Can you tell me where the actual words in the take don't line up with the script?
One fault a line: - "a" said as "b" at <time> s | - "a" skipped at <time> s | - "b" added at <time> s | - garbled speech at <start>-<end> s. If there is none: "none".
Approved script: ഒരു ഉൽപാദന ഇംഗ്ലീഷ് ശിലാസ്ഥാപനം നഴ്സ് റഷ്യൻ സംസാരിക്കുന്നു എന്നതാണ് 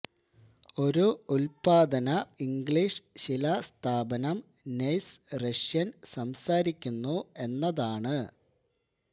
none